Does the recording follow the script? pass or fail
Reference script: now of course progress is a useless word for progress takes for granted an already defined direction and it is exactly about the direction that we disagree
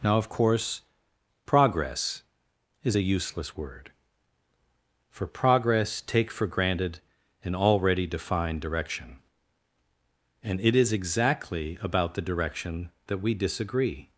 fail